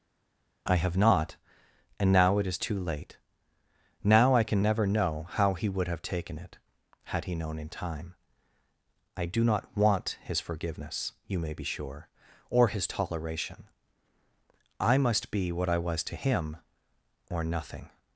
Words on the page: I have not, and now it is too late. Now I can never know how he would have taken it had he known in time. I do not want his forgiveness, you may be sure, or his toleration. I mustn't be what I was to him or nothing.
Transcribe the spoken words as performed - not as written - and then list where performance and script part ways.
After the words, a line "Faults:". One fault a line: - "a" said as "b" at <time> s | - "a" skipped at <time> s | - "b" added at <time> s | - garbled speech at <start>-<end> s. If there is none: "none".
I have not, and now it is too late. Now I can never know how he would have taken it had he known in time. I do not want his forgiveness, you may be sure, or his toleration. I must be what I was to him or nothing.
Faults:
- "mustn't" said as "must" at 15.0 s